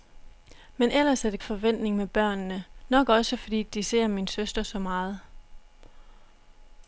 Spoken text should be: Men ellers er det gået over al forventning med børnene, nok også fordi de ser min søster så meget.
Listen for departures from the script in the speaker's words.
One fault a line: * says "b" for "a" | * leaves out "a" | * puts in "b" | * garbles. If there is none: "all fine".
* leaves out "gået over al"